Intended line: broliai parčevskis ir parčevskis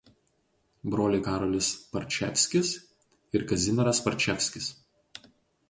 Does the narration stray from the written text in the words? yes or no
yes